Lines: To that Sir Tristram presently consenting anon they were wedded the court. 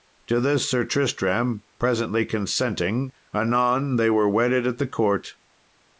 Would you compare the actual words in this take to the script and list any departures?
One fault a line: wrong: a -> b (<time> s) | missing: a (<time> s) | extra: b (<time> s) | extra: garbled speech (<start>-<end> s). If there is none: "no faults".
wrong: that -> this (0.4 s)
extra: at (4.7 s)